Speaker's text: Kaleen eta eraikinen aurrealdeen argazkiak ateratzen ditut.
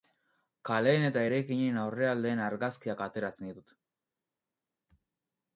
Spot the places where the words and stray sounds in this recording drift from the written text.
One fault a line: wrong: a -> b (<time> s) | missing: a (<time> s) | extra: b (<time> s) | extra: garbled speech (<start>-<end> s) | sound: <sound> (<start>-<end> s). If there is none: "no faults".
no faults